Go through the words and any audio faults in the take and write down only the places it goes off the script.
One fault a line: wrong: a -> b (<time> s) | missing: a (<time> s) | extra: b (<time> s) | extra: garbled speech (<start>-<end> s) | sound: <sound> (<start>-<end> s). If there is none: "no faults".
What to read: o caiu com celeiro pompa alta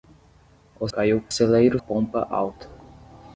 no faults